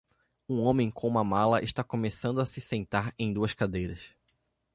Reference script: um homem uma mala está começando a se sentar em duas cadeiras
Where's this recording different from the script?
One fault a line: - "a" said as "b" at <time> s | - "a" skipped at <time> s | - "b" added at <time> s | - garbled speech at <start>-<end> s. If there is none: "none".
- "com" added at 0.9 s